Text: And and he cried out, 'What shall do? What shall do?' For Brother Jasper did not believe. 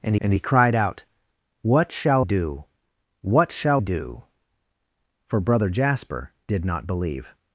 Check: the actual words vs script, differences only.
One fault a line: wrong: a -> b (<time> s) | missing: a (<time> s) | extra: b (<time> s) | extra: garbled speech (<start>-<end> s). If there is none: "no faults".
no faults